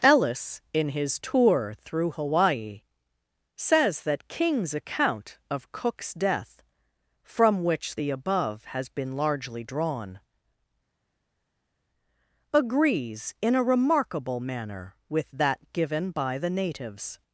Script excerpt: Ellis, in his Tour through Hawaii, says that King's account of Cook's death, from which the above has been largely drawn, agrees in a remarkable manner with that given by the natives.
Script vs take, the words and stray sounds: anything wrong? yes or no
no